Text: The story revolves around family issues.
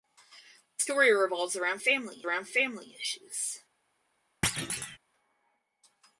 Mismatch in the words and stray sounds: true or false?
true